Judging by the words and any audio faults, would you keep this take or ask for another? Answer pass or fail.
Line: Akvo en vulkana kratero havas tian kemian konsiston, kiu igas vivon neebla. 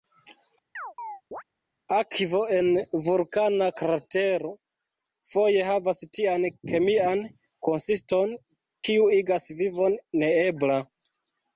fail